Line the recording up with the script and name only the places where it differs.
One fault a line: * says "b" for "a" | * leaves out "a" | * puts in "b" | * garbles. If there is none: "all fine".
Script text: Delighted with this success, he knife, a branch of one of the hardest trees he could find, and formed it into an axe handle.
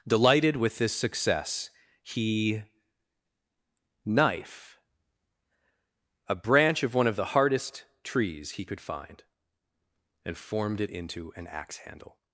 all fine